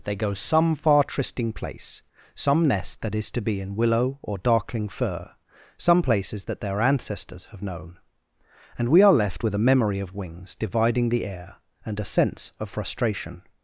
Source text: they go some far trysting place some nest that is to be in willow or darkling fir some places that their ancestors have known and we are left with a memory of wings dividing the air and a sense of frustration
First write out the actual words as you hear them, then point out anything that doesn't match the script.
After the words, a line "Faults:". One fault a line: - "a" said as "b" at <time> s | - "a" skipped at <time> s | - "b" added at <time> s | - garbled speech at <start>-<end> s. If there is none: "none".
they go some far trysting place some nest that is to be in willow or darkling fir some places that their ancestors have known and we are left with a memory of wings dividing the air and a sense of frustration
Faults:
none